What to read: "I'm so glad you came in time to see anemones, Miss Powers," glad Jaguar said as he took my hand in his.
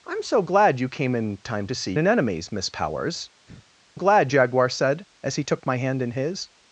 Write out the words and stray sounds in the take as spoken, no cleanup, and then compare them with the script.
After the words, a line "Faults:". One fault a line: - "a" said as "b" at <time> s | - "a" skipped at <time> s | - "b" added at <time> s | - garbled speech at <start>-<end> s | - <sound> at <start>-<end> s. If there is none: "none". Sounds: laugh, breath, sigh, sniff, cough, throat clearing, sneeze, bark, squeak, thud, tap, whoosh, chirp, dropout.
"I'm so glad you came in time to see anemones, Miss Powers," glad Jaguar said as he took my hand in his.
Faults:
- sigh at 3.5-3.7 s